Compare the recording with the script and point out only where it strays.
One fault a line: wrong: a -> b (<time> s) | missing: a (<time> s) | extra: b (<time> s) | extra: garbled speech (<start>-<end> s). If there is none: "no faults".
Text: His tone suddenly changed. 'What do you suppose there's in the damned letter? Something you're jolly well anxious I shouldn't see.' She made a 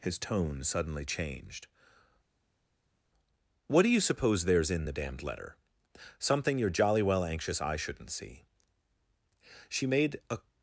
no faults